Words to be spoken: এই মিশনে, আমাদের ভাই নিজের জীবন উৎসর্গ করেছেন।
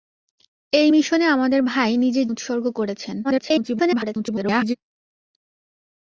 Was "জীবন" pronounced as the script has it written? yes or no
no